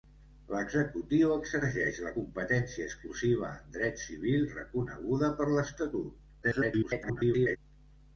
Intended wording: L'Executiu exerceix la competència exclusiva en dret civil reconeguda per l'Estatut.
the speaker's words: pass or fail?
fail